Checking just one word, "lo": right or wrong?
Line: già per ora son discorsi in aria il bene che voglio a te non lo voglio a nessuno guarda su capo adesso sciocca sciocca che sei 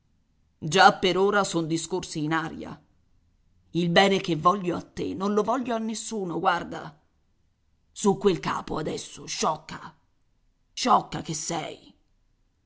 right